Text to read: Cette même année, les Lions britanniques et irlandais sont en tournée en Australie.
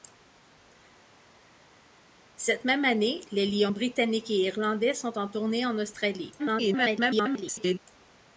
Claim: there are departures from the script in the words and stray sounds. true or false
true